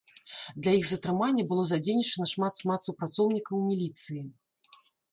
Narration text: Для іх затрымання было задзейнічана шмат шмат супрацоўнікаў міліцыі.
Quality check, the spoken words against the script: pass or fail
pass